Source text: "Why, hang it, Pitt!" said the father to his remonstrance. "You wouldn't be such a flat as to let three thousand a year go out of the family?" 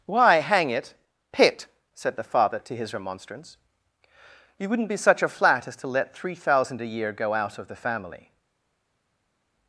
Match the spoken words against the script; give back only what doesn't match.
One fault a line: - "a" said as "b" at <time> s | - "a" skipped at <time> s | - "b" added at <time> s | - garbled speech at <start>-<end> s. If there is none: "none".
none